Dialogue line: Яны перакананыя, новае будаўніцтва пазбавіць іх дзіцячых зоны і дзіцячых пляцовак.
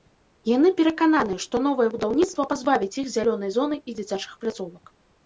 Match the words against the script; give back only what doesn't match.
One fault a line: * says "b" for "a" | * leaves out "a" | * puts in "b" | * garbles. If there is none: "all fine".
* puts in "што"
* says "зялёнай" for "дзіцячых"